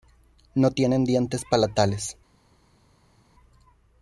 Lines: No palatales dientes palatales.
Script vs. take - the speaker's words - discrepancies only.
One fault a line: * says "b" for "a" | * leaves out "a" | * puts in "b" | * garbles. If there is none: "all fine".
* says "tienen" for "palatales"